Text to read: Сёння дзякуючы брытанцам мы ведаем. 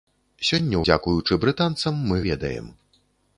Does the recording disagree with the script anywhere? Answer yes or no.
no